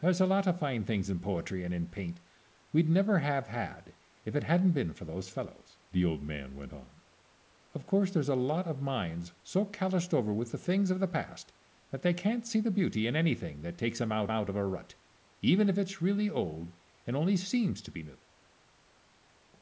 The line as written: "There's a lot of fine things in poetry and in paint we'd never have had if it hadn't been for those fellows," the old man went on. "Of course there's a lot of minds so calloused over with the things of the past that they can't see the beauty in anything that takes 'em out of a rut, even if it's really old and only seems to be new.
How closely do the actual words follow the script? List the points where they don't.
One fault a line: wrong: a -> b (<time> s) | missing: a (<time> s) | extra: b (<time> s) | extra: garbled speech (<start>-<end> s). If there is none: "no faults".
extra: out (14.3 s)